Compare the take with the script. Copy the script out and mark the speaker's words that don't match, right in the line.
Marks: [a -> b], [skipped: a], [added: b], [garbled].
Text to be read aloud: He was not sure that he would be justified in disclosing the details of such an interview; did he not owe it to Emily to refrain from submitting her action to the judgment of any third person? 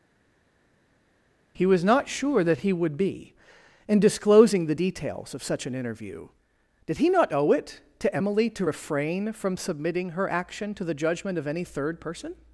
He was not sure that he would be [skipped: justified] in disclosing the details of such an interview; did he not owe it to Emily to refrain from submitting her action to the judgment of any third person?